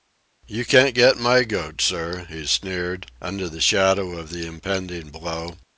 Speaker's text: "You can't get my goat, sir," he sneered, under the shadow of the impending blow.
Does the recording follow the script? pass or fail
pass